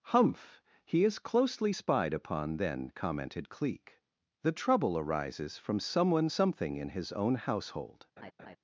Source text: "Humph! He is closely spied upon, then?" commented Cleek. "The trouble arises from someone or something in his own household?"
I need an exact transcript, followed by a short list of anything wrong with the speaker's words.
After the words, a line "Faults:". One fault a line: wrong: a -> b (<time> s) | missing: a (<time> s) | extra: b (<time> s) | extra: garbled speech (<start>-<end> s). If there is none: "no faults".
"Humph! He is closely spied upon, then?" commented Cleek. "The trouble arises from someone something in his own household?"
Faults:
missing: or (6.3 s)